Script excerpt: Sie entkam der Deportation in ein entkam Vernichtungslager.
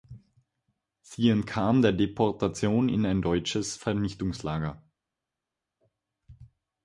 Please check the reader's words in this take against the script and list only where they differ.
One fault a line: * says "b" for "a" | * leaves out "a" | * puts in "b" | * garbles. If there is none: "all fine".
* says "deutsches" for "entkam"